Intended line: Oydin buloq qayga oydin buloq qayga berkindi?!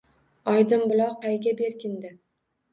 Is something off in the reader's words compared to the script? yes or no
yes